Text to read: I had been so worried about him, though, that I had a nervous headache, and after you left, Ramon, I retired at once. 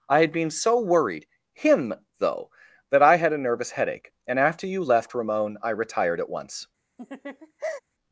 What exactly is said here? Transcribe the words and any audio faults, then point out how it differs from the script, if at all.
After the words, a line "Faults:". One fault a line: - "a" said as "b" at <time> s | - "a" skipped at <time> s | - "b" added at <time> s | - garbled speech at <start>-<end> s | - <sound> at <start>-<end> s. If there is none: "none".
I had been so worried him, though, that I had a nervous headache, and after you left, Ramon, I retired at once.
Faults:
- "about" skipped at 1.3 s
- laugh at 7.0-7.8 s